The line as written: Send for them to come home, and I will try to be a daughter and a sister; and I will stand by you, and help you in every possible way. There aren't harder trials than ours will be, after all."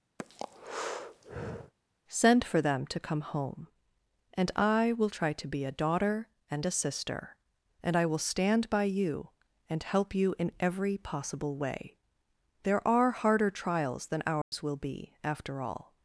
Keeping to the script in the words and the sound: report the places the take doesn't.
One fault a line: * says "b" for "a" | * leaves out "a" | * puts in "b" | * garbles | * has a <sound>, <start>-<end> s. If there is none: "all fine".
* has a breath, 0.2-1.7 s
* says "are" for "aren't"
* has a dropout, 14.4-14.5 s